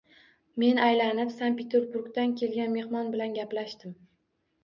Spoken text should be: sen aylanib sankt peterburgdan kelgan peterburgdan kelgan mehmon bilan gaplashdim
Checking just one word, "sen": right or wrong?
wrong